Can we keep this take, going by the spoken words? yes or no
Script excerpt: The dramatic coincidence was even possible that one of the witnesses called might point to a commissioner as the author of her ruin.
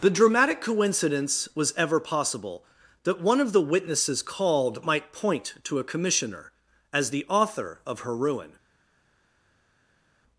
no